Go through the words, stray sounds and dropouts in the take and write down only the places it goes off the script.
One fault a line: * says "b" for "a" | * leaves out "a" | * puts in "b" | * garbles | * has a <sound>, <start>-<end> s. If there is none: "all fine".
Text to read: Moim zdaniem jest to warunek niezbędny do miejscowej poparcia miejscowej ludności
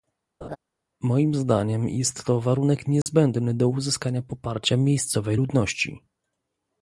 * has a laugh, 0.4-0.6 s
* has a dropout, 3.0-3.1 s
* says "uzyskania" for "miejscowej"